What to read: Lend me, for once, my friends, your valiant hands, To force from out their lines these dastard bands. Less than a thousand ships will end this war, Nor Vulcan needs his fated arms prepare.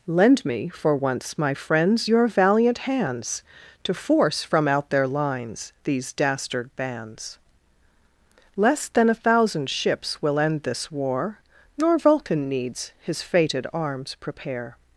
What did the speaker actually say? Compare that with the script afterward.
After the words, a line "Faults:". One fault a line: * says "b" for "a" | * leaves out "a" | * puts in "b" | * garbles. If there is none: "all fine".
Lend me, for once, my friends, your valiant hands, To force from out their lines these dastard bands. Less than a thousand ships will end this war, Nor Vulcan needs his fated arms prepare.
Faults:
all fine